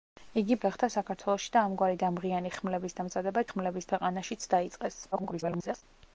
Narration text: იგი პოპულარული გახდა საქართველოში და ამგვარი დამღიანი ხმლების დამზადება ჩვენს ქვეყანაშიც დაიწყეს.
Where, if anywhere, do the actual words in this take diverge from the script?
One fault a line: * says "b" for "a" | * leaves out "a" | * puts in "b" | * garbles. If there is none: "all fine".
* leaves out "პოპულარული"
* says "ხმლების" for "ჩვენს"
* garbles